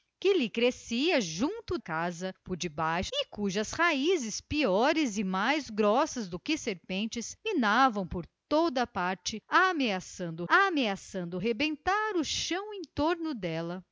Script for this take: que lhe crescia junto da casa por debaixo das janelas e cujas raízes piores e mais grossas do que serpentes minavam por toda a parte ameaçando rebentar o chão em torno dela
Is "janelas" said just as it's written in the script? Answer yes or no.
no